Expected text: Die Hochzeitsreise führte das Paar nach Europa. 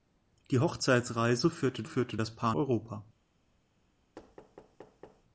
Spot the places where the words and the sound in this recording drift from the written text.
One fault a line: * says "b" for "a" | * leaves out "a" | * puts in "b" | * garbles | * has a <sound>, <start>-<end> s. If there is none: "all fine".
* puts in "führte"
* leaves out "nach"
* has a thud, 4.2-5.2 s